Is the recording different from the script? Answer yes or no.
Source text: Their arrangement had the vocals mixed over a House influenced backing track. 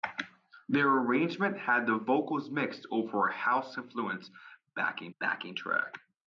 yes